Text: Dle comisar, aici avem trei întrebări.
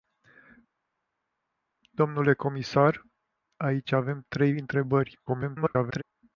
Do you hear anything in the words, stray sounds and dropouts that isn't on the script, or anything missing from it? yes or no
yes